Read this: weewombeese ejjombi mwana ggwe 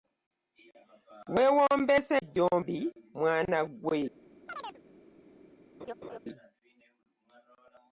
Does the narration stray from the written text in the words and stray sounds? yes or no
yes